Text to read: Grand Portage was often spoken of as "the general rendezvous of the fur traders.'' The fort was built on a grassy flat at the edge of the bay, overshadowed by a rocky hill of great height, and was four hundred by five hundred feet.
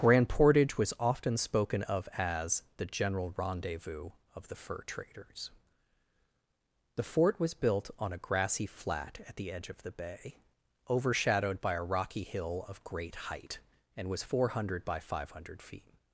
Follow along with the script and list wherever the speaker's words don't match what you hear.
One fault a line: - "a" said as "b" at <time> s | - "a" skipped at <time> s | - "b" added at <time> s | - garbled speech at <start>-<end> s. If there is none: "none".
none